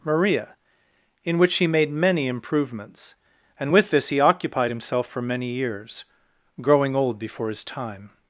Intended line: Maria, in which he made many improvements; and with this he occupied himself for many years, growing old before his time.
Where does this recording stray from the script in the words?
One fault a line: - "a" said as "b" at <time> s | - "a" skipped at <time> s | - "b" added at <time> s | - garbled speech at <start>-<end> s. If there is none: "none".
none